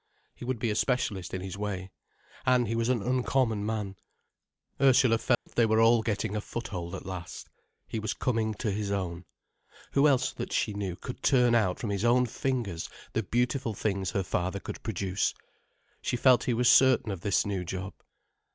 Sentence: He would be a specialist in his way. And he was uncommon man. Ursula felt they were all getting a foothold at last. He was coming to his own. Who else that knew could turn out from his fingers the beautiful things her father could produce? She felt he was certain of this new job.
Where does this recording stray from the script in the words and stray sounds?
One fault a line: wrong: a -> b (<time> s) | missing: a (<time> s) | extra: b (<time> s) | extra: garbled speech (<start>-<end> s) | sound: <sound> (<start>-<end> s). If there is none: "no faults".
extra: an (2.9 s)
sound: dropout (5.3-5.5 s)
extra: she (10.5 s)
extra: own (12.0 s)